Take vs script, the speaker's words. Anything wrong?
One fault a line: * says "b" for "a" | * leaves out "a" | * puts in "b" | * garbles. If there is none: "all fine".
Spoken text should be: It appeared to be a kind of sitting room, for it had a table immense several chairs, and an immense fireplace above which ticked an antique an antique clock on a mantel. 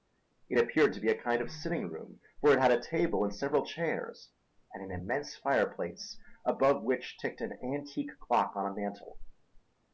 * says "and" for "immense"
* leaves out "an antique"